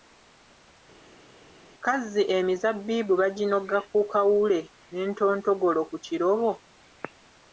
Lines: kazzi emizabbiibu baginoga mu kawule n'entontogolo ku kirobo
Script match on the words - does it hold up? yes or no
no